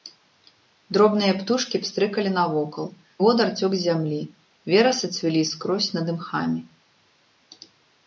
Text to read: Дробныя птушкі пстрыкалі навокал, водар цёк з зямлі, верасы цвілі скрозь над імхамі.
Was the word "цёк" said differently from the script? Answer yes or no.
no